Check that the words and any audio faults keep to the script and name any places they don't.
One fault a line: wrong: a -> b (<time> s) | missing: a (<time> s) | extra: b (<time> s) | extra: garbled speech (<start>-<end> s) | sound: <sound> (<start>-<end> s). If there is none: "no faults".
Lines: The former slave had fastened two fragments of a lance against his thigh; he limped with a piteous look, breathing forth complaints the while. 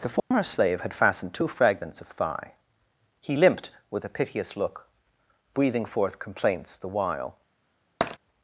sound: dropout (0.2-0.3 s)
missing: a lance against his (2.1 s)
sound: tap (8.0-8.2 s)